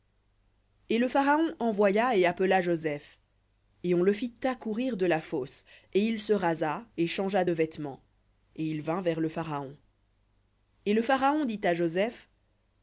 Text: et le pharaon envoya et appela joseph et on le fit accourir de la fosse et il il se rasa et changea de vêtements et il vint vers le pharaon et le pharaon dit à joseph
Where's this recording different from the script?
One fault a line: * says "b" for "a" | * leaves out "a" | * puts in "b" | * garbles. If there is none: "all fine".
* leaves out "il"